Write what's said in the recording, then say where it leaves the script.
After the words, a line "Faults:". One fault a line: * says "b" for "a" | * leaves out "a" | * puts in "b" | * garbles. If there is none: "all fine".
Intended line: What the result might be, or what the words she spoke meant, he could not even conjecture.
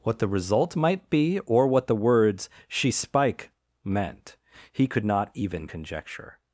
What the result might be, or what the words she spike meant, he could not even conjecture.
Faults:
* says "spike" for "spoke"